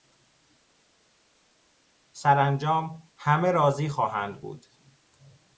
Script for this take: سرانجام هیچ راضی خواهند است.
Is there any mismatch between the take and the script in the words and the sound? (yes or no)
yes